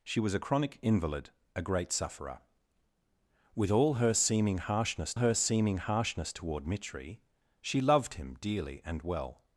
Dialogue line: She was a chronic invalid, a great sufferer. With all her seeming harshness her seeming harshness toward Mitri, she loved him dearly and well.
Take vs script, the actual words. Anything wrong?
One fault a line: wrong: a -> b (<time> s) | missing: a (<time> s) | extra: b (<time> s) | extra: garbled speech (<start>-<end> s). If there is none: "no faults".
no faults